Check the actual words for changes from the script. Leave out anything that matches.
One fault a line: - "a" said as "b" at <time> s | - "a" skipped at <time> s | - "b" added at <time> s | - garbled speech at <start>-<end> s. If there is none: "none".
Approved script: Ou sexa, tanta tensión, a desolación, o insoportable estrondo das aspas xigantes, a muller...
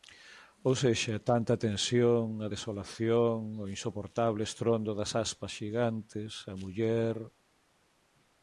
none